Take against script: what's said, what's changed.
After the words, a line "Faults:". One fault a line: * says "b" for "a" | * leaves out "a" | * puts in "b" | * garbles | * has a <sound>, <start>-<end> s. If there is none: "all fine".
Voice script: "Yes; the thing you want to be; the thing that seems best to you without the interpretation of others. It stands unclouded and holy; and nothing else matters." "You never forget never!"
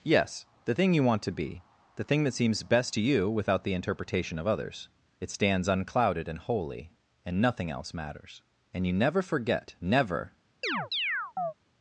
"Yes; the thing you want to be; the thing that seems best to you without the interpretation of others. It stands unclouded and holy; and nothing else matters." "And you never forget never!"
Faults:
* puts in "And"
* has a chirp, 10.6-11.5 s